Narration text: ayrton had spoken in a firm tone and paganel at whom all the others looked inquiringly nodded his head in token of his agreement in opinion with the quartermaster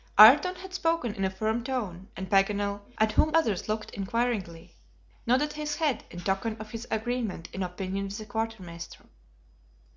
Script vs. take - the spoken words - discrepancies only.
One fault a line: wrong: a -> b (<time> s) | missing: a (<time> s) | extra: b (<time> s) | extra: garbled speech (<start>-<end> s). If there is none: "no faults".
missing: all the (3.3 s)